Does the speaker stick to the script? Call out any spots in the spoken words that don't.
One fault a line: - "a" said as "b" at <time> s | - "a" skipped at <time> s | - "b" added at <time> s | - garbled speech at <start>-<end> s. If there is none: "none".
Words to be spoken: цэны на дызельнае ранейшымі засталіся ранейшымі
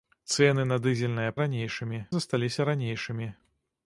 none